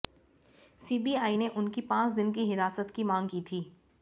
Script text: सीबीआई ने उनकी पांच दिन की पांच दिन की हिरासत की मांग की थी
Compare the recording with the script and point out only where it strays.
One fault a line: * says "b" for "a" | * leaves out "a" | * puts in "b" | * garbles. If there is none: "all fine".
* leaves out "पांच दिन की"